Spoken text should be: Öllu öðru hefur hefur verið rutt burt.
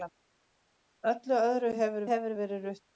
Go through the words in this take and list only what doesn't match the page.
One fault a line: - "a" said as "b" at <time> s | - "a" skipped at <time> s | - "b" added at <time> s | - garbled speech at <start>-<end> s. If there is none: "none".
none